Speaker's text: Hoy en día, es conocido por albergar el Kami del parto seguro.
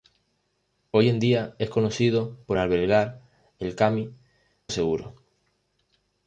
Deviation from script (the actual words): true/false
true